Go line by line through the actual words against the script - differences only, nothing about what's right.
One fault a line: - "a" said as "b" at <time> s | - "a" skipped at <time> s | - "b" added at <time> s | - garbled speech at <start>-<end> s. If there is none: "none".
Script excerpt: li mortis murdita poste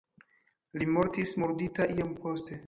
- "iom" added at 2.0 s